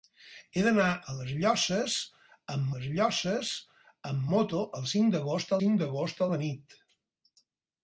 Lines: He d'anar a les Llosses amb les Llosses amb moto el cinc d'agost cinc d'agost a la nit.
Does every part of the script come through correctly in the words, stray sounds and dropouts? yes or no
yes